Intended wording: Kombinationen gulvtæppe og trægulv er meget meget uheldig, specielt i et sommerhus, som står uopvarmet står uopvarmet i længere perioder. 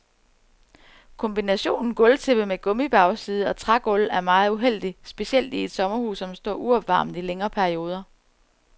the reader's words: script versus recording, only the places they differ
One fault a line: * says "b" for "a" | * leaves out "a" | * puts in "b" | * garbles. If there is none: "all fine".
* puts in "med gummibagside"
* leaves out "meget"
* leaves out "står uopvarmet"